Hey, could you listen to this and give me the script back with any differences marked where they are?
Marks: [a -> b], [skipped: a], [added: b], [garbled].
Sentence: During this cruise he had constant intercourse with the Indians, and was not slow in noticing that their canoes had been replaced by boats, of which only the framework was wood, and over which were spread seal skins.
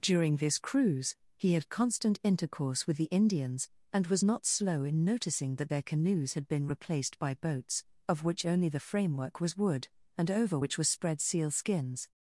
During this cruise he had constant intercourse with the Indians, and was not slow in noticing that their canoes had been replaced by boats, of which only the framework was wood, and over which were spread seal skins.